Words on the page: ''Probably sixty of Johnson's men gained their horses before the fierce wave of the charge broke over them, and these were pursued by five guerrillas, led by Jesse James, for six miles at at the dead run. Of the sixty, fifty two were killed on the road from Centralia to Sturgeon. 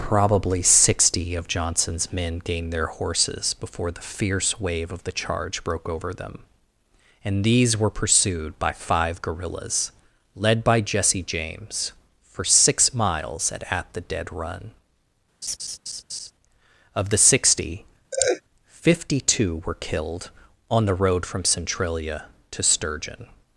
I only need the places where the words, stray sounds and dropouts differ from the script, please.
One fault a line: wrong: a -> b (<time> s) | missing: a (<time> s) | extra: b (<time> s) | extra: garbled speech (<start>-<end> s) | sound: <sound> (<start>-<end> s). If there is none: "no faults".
sound: laugh (15.4-16.3 s)
sound: laugh (18.1-18.4 s)